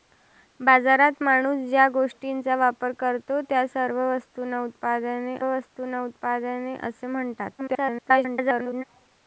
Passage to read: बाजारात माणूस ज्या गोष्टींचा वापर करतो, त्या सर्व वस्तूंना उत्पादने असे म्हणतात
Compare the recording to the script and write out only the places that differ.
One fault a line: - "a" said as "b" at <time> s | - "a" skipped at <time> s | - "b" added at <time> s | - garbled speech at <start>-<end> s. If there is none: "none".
- "वस्तूंना उत्पादने" added at 5.5 s
- garbled speech at 7.6-8.8 s